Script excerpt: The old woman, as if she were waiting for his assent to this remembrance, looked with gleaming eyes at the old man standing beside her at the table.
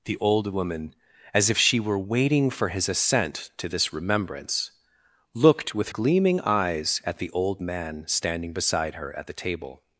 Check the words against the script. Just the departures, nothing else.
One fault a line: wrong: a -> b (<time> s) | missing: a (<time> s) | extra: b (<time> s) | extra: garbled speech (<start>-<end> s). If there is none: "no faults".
no faults